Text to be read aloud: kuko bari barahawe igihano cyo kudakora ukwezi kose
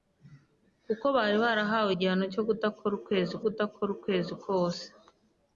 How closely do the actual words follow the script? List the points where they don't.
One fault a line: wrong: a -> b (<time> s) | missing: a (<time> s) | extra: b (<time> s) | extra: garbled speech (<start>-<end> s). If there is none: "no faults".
extra: kudakora ukwezi (3.4 s)